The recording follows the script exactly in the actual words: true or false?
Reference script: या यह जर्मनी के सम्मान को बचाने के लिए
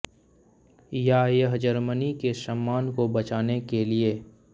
true